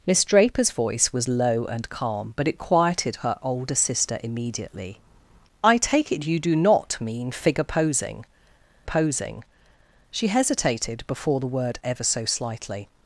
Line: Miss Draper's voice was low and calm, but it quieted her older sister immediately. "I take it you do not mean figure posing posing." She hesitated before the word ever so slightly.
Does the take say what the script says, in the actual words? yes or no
yes